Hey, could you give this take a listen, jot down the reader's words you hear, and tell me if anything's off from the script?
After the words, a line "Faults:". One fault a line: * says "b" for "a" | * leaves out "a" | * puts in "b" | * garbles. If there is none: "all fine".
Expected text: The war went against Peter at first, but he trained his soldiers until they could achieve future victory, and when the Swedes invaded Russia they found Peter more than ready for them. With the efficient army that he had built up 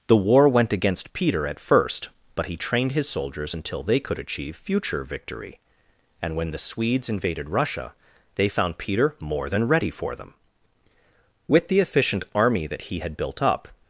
The war went against Peter at first, but he trained his soldiers until they could achieve future victory, and when the Swedes invaded Russia they found Peter more than ready for them. With the efficient army that he had built up
Faults:
all fine